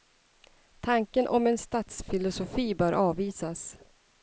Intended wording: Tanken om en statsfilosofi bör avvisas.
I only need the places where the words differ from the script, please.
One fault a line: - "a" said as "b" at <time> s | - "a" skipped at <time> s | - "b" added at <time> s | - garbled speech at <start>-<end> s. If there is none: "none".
none